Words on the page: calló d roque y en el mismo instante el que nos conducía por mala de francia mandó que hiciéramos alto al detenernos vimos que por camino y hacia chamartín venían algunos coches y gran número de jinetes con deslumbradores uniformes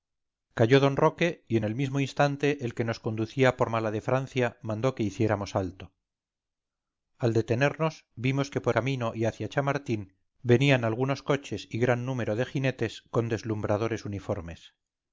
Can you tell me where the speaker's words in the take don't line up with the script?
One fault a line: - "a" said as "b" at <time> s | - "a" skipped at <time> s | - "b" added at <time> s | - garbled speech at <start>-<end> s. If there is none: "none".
none